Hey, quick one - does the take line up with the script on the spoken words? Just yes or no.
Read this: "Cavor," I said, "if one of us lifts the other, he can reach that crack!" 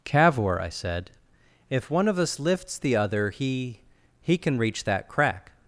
no